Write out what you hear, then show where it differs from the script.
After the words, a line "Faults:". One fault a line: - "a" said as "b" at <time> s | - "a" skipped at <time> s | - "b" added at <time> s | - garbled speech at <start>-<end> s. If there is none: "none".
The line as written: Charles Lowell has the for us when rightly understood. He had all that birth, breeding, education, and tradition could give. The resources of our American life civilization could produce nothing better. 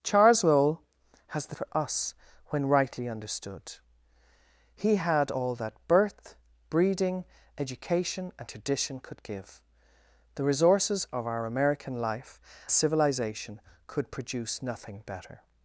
Charles Lowell has the for us when rightly understood. He had all that birth, breeding, education, and tradition could give. The resources of our American life civilization could produce nothing better.
Faults:
none